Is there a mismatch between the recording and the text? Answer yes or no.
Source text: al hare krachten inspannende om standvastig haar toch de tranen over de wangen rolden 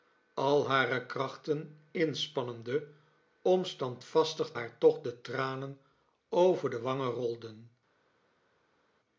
no